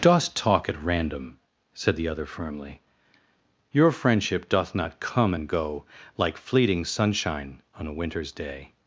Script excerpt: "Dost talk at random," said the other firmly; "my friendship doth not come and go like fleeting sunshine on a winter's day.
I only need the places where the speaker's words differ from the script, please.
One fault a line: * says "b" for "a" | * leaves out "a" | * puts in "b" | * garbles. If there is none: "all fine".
* says "your" for "my"